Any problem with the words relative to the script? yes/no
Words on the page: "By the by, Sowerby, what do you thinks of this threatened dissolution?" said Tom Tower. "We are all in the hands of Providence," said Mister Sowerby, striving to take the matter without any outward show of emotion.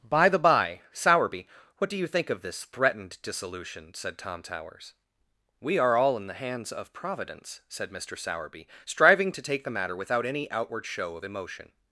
yes